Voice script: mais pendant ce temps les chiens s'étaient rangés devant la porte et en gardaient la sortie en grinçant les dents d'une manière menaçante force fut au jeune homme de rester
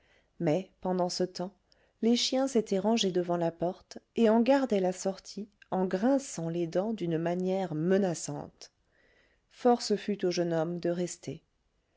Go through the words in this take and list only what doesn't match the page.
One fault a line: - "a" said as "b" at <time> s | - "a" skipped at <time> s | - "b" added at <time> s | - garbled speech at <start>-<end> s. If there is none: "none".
none